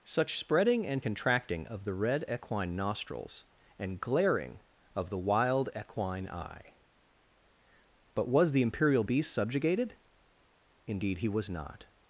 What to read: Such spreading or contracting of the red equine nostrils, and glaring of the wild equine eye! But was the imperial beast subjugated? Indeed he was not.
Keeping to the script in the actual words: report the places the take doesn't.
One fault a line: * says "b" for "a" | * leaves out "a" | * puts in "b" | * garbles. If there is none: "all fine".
* says "and" for "or"